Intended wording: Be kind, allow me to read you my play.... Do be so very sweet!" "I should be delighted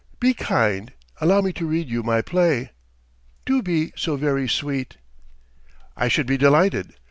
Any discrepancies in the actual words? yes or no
no